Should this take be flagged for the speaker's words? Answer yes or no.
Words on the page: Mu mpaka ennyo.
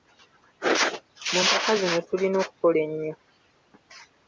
yes